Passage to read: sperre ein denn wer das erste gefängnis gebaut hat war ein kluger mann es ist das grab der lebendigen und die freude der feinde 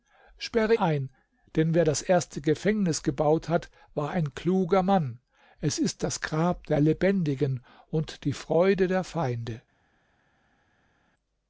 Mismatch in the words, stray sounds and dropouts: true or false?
false